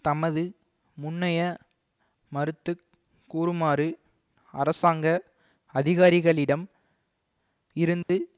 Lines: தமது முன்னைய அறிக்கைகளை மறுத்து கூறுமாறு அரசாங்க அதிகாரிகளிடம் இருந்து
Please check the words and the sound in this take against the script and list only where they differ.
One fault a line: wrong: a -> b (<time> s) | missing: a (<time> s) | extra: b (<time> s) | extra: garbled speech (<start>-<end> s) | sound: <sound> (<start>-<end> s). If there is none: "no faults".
missing: அறிக்கைகளை (1.4 s)
sound: dropout (8.0-8.1 s)